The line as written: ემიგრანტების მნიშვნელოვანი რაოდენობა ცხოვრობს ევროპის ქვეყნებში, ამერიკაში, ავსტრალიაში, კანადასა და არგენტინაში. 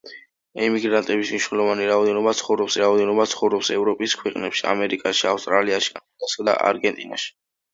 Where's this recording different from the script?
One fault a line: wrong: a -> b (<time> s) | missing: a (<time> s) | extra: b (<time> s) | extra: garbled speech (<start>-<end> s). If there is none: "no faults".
extra: რაოდენობა ცხოვრობს (2.8 s)